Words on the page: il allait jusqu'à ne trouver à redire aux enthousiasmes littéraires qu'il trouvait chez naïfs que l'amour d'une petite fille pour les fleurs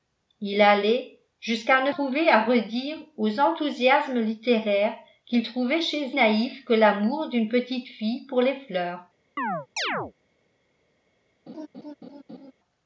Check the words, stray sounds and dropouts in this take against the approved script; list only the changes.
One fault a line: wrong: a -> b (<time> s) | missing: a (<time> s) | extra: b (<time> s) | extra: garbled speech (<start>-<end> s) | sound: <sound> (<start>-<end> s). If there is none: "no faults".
sound: chirp (9.4-10.1 s)
sound: laugh (11.5-12.5 s)